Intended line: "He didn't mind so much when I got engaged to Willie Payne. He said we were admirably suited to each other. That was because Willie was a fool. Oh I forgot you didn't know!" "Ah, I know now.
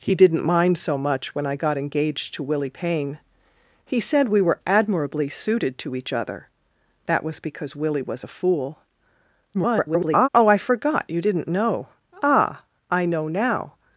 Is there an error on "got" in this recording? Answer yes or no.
no